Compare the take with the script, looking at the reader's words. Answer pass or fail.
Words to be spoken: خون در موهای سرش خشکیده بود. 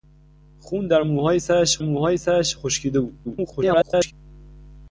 fail